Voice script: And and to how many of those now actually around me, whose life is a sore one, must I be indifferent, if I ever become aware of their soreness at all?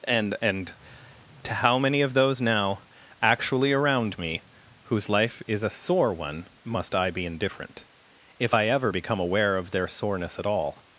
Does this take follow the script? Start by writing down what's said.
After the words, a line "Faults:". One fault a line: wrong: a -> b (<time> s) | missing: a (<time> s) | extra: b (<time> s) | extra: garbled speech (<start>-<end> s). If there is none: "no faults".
And and to how many of those now actually around me, whose life is a sore one, must I be indifferent, if I ever become aware of their soreness at all?
Faults:
no faults